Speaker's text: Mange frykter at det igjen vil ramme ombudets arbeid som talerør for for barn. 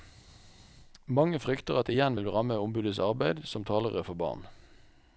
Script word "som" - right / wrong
right